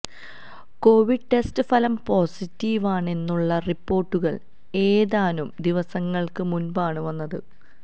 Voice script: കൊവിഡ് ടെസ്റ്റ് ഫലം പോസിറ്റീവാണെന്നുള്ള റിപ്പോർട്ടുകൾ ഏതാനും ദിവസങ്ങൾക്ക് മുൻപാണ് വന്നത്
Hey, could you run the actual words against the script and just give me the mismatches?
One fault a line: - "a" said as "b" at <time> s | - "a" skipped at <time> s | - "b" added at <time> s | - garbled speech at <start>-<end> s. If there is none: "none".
none